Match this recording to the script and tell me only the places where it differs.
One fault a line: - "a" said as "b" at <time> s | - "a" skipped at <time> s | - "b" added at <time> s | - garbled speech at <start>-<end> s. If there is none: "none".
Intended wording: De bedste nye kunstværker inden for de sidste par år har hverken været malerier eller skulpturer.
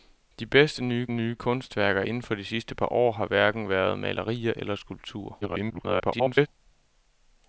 - "nye" added at 1.1 s
- garbled speech at 5.4-6.5 s